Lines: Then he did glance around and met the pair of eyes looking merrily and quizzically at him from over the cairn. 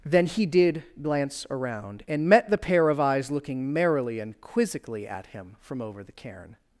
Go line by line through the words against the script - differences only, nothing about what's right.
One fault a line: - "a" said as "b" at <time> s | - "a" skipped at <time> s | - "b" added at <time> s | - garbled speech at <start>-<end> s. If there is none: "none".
none